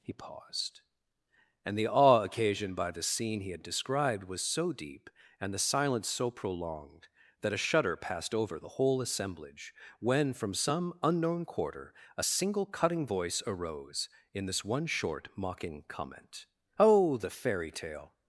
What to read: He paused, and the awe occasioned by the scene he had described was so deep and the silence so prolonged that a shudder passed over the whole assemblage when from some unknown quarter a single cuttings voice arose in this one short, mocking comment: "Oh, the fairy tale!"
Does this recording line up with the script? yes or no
no